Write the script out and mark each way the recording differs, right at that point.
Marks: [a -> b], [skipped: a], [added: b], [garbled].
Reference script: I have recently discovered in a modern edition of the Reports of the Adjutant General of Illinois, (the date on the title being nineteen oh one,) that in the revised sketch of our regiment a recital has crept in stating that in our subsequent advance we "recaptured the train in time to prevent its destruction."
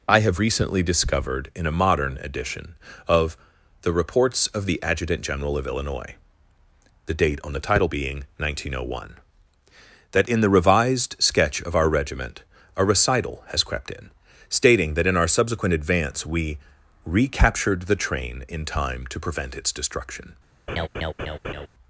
I have recently discovered in a modern edition of the Reports of the Adjutant General of Illinois, (the date on the title being nineteen oh one,) that in the revised sketch of our regiment a recital has crept in stating that in our subsequent advance we "recaptured the train in time to prevent its destruction."